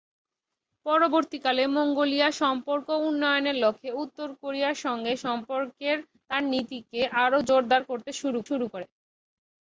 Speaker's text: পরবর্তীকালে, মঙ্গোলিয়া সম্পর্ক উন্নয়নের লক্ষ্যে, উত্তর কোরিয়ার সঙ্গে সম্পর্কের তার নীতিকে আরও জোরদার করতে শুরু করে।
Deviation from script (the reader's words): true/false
true